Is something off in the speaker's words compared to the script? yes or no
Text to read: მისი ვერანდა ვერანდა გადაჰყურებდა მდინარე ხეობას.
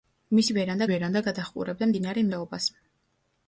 no